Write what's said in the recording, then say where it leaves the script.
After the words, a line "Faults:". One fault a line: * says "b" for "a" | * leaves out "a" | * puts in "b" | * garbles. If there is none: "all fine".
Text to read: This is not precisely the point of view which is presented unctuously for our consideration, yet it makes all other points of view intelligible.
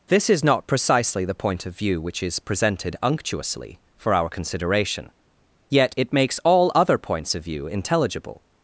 This is not precisely the point of view which is presented unctuously for our consideration, yet it makes all other points of view intelligible.
Faults:
all fine